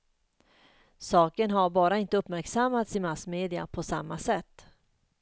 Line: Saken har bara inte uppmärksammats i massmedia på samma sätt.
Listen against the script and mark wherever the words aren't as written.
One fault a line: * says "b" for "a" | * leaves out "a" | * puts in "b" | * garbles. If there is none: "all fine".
all fine